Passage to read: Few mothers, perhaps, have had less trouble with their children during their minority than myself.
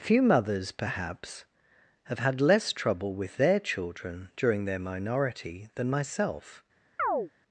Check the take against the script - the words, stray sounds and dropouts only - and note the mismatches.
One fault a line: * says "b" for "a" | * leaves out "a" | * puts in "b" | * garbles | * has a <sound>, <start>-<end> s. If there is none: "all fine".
* has a chirp, 7.0-7.3 s